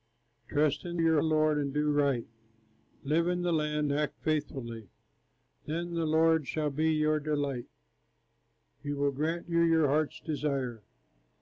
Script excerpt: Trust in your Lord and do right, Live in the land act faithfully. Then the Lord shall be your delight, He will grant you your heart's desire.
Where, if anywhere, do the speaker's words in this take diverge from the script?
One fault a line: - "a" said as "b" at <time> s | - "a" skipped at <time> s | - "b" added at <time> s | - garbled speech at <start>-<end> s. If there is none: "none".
none